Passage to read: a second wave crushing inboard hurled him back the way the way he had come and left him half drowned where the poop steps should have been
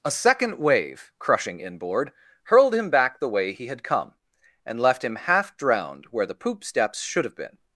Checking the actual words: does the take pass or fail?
fail